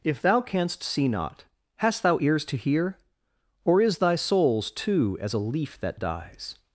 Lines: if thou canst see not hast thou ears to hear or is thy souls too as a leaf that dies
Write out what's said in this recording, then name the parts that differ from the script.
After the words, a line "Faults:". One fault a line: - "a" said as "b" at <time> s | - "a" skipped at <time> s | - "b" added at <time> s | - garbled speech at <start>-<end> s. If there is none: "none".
if thou canst see not hast thou ears to hear or is thy souls too as a leaf that dies
Faults:
none